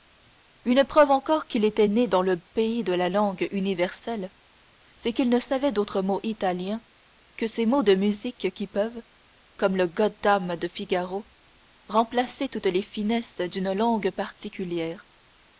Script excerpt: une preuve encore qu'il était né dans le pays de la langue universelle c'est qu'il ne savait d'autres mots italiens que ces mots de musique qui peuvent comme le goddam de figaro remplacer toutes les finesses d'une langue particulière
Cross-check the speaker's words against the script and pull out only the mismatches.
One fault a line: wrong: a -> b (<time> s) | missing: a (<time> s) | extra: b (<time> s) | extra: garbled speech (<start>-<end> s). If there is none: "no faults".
no faults